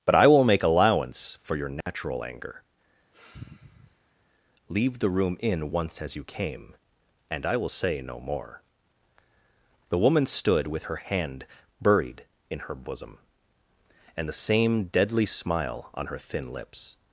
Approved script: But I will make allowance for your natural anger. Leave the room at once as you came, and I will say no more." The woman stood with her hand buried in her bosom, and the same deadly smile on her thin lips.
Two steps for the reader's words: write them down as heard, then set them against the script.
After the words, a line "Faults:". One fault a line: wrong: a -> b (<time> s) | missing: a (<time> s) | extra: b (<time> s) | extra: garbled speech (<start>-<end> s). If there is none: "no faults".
But I will make allowance for your natural anger. Leave the room in once as you came, and I will say no more." The woman stood with her hand buried in her bosom, and the same deadly smile on her thin lips.
Faults:
wrong: at -> in (5.4 s)